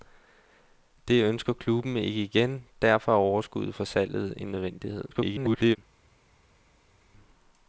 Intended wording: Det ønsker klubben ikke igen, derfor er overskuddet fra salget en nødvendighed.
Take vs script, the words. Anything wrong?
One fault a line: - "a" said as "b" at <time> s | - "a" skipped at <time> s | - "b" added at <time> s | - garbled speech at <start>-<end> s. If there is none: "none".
- garbled speech at 5.1-5.8 s